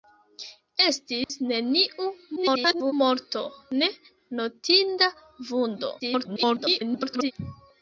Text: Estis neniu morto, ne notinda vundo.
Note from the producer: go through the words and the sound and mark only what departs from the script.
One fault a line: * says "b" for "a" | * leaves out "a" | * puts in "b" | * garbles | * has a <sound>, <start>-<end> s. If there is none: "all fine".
* has a dropout, 1.2-1.3 s
* garbles
* garbles